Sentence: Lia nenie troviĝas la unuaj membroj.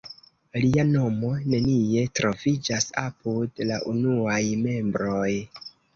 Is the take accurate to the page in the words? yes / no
no